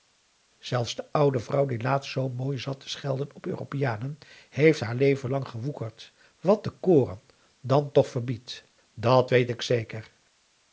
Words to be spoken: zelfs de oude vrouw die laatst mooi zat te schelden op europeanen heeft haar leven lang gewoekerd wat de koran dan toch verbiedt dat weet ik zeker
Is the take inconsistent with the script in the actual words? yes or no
yes